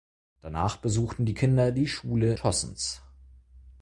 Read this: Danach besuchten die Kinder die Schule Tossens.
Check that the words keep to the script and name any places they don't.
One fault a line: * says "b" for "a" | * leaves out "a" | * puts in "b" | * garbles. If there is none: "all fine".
all fine